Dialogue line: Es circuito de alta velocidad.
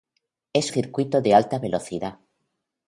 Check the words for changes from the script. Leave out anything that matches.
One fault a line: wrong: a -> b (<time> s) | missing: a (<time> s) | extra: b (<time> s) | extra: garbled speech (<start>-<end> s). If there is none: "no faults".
no faults